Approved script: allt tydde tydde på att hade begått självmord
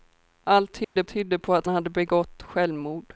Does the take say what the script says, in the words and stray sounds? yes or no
no